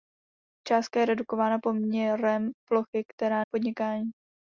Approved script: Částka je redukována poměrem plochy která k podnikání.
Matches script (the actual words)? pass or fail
pass